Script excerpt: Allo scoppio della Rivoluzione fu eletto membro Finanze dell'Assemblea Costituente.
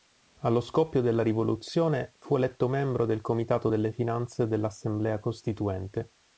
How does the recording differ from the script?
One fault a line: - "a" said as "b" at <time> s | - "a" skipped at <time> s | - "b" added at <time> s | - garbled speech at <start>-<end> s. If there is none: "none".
- "del comitato delle" added at 3.0 s